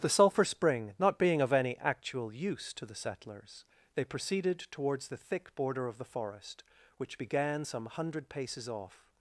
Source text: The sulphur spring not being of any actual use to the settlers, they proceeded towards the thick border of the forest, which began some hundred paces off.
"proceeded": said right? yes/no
yes